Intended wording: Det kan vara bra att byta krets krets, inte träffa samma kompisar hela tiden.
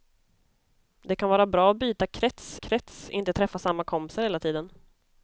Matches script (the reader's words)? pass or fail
pass